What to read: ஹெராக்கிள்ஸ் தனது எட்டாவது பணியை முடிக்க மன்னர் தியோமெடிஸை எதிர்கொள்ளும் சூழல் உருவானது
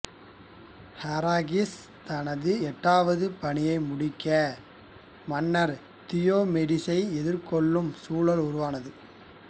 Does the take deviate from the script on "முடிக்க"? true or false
false